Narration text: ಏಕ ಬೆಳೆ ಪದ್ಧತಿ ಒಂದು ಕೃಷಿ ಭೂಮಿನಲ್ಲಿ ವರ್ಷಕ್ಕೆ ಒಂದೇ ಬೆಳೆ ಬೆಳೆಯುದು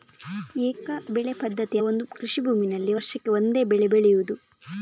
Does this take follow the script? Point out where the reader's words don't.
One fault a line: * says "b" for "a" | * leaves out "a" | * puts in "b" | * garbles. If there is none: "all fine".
all fine